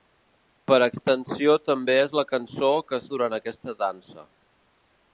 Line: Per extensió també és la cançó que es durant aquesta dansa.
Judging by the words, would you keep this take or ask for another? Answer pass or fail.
pass